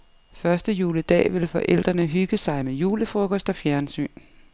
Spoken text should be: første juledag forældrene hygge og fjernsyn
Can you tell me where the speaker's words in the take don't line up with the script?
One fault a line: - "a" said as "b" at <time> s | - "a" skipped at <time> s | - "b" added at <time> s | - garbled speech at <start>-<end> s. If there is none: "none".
- "vil" added at 1.3 s
- "sig med julefrokost" added at 2.4 s